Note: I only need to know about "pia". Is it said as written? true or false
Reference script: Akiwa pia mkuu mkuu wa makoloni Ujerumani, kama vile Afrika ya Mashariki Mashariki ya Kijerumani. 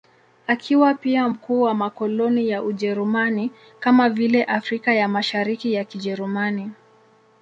true